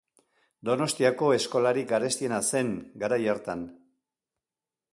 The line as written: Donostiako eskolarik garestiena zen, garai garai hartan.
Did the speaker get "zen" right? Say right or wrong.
right